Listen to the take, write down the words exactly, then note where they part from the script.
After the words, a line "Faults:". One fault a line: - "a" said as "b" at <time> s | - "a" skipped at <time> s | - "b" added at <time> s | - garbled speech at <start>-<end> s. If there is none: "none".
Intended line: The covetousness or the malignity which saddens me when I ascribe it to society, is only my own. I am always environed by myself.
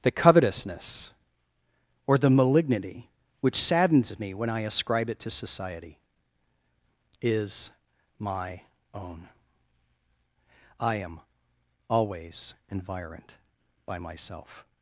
The covetousness or the malignity which saddens me when I ascribe it to society, is my own. I am always environed by myself.
Faults:
- "only" skipped at 7.7 s